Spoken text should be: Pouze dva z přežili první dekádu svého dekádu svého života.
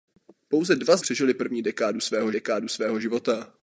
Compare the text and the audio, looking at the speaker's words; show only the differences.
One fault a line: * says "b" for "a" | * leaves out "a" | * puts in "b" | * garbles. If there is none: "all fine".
all fine